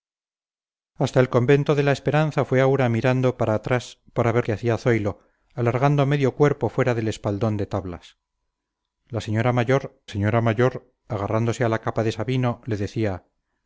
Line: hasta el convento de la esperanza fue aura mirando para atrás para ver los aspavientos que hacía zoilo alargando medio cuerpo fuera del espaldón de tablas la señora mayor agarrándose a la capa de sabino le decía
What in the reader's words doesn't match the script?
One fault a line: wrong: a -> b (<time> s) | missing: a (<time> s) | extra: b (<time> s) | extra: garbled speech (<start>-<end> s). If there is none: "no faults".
missing: los aspavientos (4.5 s)
extra: señora mayor (10.1 s)